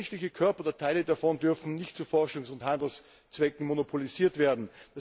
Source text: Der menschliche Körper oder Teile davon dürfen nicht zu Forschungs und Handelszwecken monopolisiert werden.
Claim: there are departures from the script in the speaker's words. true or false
false